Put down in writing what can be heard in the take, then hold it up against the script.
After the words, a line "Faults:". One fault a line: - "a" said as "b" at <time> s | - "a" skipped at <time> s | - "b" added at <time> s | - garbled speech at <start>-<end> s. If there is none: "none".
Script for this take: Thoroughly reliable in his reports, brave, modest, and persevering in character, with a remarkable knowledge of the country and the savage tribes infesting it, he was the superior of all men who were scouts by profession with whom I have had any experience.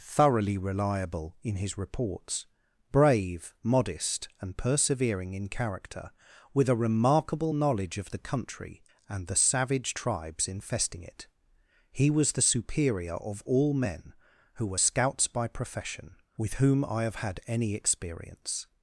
Thoroughly reliable in his reports, brave, modest, and persevering in character, with a remarkable knowledge of the country and the savage tribes infesting it, he was the superior of all men who were scouts by profession with whom I have had any experience.
Faults:
none